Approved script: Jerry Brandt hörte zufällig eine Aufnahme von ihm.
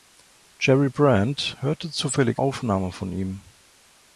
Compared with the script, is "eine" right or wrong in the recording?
wrong